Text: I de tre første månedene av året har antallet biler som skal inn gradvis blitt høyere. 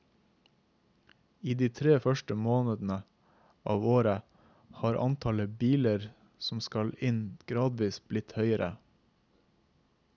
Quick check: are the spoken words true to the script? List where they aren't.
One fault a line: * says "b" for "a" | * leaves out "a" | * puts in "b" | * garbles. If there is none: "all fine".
all fine